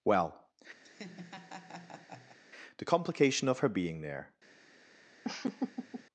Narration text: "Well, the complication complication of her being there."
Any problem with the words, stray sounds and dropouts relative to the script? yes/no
yes